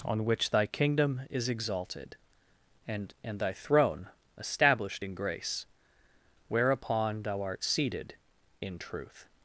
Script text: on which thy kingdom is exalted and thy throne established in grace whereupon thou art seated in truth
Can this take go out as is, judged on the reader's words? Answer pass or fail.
fail